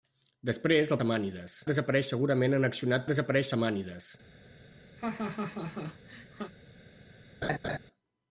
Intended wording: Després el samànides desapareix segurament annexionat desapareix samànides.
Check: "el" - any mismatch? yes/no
no